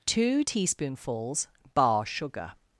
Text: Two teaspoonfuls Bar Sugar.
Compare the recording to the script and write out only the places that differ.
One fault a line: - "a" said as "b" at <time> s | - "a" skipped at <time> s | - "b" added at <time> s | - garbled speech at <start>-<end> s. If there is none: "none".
none